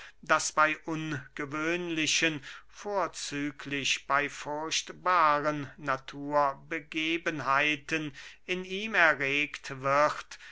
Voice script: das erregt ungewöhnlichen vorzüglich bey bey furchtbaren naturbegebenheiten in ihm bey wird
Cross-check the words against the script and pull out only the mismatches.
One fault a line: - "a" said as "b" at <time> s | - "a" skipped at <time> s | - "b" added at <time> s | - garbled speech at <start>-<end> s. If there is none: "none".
- "erregt" said as "bey" at 0.5 s
- "bey" skipped at 4.3 s
- "bey" said as "erregt" at 8.9 s